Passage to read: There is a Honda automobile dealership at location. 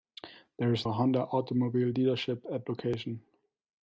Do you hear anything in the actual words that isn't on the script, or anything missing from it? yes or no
no